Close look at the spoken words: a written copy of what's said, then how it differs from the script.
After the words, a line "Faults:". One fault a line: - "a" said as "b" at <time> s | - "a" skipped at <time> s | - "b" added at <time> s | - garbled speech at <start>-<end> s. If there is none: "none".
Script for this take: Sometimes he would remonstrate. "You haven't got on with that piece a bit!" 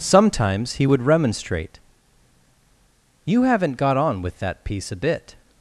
Sometimes he would remonstrate. "You haven't got on with that piece a bit!"
Faults:
none